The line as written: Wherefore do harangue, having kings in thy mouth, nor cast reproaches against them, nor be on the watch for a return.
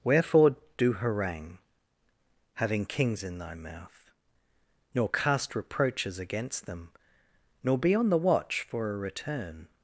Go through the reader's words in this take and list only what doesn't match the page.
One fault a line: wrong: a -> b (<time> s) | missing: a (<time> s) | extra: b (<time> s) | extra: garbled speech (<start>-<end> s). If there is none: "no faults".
no faults